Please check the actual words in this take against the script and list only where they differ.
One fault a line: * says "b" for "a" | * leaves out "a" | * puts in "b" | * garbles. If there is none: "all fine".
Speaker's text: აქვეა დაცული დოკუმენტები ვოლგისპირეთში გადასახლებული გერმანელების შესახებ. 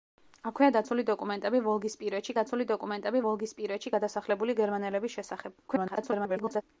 * puts in "დაცული დოკუმენტები ვოლგისპირეთში"
* garbles